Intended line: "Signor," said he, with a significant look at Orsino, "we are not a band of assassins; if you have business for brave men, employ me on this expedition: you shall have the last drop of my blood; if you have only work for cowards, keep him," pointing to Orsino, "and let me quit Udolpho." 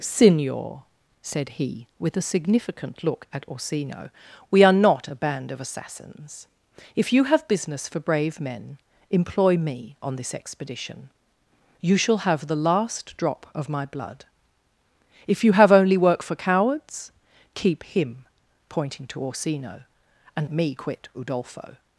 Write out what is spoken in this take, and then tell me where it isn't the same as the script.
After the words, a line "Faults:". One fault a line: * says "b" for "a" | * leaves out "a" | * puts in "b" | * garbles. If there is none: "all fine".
"Signor," said he, with a significant look at Orsino, "we are not a band of assassins; if you have business for brave men, employ me on this expedition: you shall have the last drop of my blood; if you have only work for cowards, keep him," pointing to Orsino, "and me quit Udolpho."
Faults:
* leaves out "let"